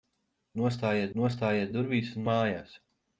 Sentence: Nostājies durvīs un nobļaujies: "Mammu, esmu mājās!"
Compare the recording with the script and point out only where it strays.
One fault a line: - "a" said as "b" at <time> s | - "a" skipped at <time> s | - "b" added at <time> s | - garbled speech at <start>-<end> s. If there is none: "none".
- "nostājies" added at 1.2 s
- "nobļaujies Mammu esmu" skipped at 2.3 s